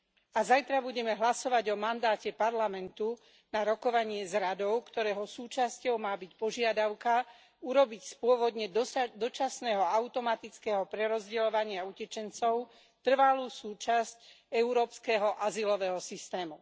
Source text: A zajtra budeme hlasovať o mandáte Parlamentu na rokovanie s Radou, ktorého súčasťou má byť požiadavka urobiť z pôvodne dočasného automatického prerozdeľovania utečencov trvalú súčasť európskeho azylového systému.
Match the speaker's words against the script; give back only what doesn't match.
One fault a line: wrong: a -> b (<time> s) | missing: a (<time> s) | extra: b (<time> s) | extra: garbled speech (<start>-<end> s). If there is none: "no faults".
no faults